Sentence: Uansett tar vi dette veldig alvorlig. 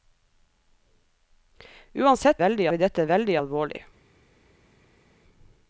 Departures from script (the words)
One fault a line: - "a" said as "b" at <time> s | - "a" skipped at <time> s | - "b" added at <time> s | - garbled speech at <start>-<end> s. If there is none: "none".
- "tar" said as "veldig" at 2.4 s